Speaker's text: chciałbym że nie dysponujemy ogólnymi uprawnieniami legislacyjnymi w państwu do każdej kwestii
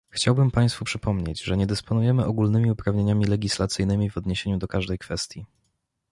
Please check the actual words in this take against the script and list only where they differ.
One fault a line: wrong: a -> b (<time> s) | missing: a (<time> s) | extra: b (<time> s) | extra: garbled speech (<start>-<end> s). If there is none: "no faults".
extra: państwu przypomnieć (0.5 s)
wrong: państwu -> odniesieniu (4.2 s)